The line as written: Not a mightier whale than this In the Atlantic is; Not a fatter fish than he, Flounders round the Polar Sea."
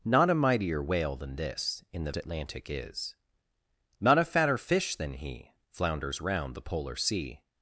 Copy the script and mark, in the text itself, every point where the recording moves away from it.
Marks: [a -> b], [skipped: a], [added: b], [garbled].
Not a mightier whale than this In the Atlantic is; Not a fatter fish than he, Flounders round the Polar Sea."